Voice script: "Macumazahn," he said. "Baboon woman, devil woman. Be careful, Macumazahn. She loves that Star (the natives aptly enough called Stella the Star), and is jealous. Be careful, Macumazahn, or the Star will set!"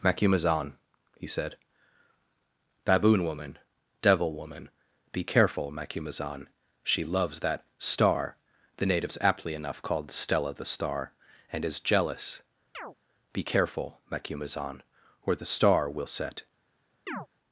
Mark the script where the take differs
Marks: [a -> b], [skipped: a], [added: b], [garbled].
"Macumazahn," he said. "Baboon woman, devil woman. Be careful, Macumazahn. She loves that Star (the natives aptly enough called Stella the Star), and is jealous. Be careful, Macumazahn, or the Star will set!"